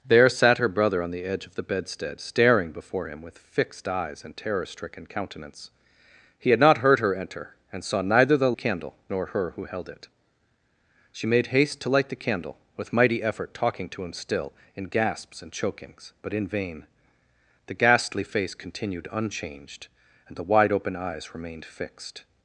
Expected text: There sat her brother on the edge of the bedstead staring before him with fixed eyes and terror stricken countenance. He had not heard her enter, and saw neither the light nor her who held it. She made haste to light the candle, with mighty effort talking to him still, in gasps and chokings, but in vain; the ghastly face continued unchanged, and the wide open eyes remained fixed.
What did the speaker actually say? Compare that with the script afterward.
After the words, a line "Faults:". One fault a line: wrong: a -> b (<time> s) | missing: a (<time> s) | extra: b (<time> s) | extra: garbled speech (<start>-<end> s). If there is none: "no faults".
There sat her brother on the edge of the bedstead staring before him with fixed eyes and terror stricken countenance. He had not heard her enter, and saw neither the candle nor her who held it. She made haste to light the candle, with mighty effort talking to him still, in gasps and chokings, but in vain; the ghastly face continued unchanged, and the wide open eyes remained fixed.
Faults:
wrong: light -> candle (8.5 s)